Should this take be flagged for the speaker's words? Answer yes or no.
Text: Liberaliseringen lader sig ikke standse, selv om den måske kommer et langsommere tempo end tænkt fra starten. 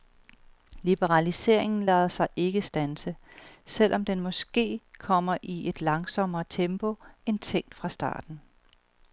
yes